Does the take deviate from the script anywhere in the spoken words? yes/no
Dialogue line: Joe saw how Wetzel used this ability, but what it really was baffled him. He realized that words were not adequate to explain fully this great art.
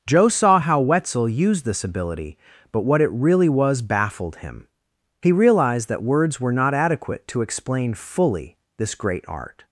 no